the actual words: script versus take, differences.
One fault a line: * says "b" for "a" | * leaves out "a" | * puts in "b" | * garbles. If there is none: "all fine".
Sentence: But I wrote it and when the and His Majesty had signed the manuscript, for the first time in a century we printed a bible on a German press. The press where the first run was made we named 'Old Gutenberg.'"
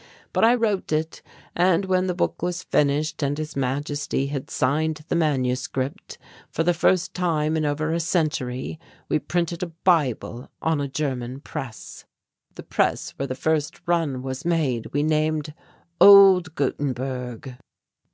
* puts in "book was finished"
* puts in "over"